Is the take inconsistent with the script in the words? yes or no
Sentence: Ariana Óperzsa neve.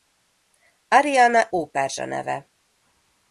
no